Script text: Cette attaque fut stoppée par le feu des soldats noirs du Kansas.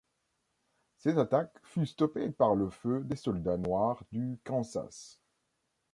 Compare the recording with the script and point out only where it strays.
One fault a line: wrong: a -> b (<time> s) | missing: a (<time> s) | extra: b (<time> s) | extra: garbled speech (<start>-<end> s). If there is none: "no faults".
no faults